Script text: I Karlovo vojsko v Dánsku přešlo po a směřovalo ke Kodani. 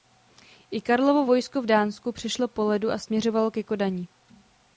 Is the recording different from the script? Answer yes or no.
yes